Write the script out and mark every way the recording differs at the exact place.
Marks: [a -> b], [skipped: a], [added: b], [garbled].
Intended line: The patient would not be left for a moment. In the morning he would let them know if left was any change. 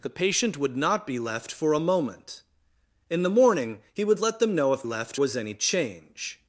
The patient would not be left for a moment. In the morning he would let them know if left was any change.